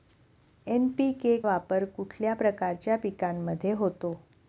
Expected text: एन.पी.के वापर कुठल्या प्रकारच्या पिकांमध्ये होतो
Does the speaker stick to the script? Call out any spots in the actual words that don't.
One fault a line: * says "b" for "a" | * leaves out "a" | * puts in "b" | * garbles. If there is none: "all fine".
all fine